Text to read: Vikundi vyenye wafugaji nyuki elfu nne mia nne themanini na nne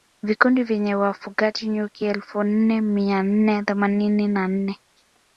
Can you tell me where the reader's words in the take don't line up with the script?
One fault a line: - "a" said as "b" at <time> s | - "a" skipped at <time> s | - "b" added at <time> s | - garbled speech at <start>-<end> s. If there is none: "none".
none